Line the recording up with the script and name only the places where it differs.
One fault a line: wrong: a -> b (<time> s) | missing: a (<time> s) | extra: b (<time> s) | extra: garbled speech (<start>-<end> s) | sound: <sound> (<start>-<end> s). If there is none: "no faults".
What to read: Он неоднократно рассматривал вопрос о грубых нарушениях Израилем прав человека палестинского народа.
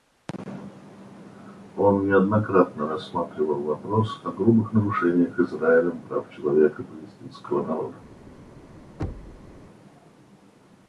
sound: thud (9.0-9.6 s)